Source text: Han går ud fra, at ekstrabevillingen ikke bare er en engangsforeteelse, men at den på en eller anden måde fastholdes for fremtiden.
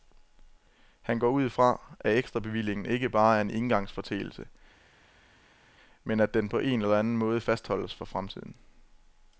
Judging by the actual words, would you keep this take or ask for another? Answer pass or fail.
pass